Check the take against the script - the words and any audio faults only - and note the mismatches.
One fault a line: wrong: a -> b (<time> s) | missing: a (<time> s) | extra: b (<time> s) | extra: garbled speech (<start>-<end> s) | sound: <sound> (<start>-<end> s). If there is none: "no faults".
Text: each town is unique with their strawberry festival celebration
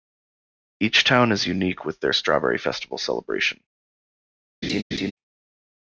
sound: laugh (4.6-5.1 s)